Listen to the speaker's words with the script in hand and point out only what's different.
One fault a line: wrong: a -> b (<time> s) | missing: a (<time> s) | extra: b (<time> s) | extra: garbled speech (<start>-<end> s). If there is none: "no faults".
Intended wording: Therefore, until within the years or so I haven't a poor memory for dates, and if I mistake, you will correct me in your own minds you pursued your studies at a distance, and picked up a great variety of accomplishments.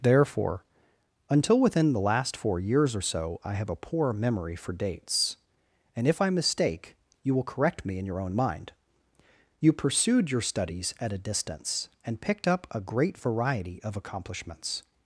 extra: last four (2.0 s)
wrong: haven't -> have (3.5 s)
wrong: minds -> mind (8.3 s)